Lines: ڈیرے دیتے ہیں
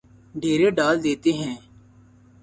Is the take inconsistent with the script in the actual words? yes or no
yes